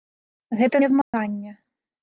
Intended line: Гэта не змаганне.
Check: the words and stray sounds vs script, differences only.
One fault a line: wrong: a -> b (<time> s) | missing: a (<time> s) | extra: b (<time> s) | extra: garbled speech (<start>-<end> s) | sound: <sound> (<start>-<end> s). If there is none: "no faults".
sound: dropout (1.0-1.1 s)